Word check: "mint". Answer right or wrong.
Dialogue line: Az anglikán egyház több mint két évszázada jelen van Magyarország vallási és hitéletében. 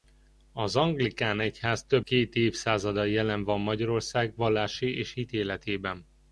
wrong